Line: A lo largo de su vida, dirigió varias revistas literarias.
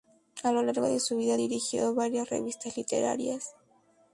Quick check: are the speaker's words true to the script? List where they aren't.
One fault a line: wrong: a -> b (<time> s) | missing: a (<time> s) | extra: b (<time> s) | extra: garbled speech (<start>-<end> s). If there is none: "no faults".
no faults